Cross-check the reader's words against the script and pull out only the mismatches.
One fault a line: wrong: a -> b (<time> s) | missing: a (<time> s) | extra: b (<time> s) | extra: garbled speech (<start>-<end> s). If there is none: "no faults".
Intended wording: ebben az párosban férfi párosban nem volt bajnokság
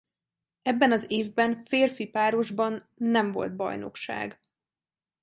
wrong: párosban -> évben (1.1 s)